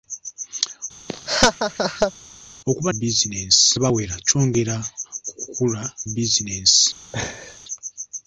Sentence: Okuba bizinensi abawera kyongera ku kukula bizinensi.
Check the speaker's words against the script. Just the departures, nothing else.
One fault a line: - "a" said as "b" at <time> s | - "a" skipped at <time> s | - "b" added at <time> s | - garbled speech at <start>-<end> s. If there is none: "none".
none